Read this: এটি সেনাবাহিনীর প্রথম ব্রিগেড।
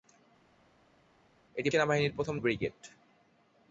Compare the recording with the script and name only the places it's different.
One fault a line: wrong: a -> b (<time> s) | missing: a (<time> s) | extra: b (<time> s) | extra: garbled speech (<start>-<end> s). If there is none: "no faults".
no faults